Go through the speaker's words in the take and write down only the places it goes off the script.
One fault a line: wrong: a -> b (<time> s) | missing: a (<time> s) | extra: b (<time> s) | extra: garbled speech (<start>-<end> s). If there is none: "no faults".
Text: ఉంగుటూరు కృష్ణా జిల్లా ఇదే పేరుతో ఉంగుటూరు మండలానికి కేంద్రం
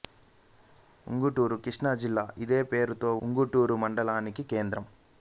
no faults